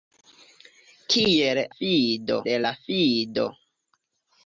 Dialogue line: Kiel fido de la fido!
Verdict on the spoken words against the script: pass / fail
pass